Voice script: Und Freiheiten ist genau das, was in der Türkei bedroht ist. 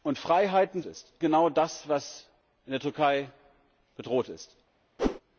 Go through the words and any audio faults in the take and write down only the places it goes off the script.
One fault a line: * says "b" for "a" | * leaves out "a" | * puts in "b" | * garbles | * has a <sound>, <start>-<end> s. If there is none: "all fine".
* has a whoosh, 5.0-5.2 s